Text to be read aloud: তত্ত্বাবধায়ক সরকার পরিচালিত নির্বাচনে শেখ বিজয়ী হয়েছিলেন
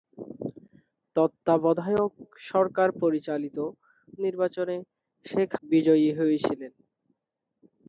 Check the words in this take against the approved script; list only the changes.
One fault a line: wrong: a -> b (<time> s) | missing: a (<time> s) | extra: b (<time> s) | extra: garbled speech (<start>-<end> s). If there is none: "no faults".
no faults